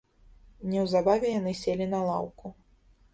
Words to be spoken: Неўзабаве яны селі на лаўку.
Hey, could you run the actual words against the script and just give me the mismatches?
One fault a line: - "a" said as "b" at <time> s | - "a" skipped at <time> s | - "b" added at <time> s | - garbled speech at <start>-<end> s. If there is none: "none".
none